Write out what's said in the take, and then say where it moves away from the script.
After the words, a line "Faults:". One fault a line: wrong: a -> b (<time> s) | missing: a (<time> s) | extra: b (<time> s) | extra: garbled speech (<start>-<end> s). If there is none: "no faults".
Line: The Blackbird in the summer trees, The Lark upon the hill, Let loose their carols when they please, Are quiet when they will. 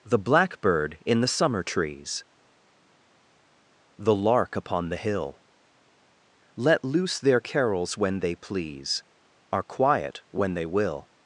The Blackbird in the summer trees, The Lark upon the hill, Let loose their carols when they please, Are quiet when they will.
Faults:
no faults